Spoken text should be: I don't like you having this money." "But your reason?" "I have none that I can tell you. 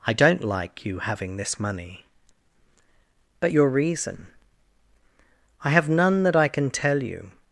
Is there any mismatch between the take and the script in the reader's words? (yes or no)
no